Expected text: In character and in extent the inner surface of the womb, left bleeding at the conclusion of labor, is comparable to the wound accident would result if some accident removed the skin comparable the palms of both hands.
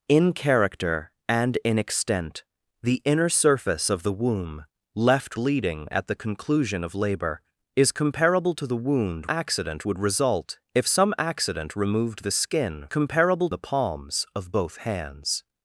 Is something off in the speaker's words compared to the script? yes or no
no